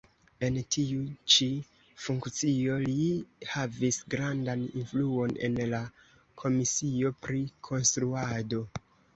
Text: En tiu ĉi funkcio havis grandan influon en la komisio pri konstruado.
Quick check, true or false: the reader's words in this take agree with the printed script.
false